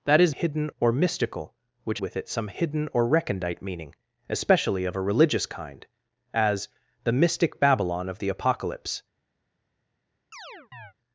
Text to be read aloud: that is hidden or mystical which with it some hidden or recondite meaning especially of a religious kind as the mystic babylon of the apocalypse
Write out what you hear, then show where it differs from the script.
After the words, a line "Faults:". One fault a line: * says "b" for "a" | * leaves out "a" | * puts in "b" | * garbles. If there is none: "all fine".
that is hidden or mystical which with it some hidden or recondite meaning especially of a religious kind as the mystic babylon of the apocalypse
Faults:
all fine